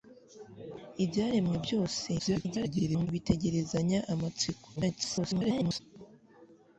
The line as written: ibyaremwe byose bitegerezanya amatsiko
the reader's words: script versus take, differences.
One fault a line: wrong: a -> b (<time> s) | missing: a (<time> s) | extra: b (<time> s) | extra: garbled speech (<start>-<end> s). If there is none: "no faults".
extra: garbled speech (2.2-3.1 s)
extra: garbled speech (4.8-5.8 s)